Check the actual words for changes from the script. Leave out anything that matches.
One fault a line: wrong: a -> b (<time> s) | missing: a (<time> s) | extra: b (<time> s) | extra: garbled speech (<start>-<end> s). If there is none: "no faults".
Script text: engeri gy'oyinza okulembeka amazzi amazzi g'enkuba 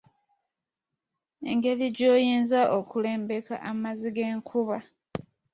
missing: amazzi (4.1 s)